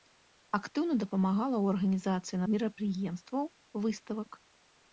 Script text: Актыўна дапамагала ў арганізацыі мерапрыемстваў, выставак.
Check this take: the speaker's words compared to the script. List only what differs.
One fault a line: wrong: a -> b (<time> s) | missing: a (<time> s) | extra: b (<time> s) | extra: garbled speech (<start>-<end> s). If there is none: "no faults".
no faults